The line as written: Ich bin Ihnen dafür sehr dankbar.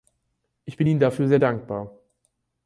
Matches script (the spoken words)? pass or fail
pass